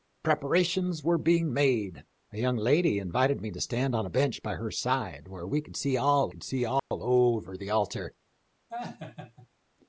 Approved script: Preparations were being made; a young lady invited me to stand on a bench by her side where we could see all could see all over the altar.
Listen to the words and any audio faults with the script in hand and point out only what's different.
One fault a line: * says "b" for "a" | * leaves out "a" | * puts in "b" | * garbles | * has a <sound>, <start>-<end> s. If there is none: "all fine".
* has a dropout, 6.8-6.9 s
* has a laugh, 8.7-9.5 s